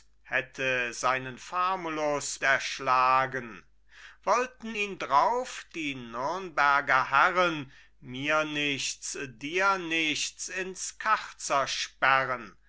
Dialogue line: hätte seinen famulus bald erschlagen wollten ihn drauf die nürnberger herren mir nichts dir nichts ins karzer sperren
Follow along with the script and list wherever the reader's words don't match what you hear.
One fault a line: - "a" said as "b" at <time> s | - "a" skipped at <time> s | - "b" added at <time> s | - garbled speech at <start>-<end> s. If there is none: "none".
- "bald" skipped at 2.4 s